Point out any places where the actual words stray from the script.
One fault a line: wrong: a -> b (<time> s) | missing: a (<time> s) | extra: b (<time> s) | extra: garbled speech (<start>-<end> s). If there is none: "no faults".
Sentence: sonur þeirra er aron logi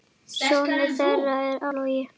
missing: aron (1.6 s)